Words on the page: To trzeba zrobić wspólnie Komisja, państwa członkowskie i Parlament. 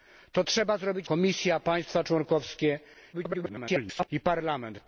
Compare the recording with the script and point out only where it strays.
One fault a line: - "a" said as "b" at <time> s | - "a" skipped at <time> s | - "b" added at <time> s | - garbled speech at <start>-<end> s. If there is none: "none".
- "wspólnie" skipped at 1.1 s
- garbled speech at 3.1-4.1 s